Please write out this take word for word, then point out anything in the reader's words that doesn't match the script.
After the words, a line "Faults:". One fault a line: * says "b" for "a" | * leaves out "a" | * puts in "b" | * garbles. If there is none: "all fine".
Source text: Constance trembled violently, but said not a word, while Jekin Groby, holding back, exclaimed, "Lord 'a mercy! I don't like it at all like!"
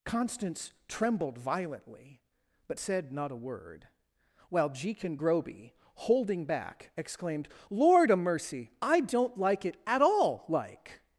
Constance trembled violently, but said not a word, while Jekin Groby, holding back, exclaimed, "Lord 'a mercy! I don't like it at all like!"
Faults:
all fine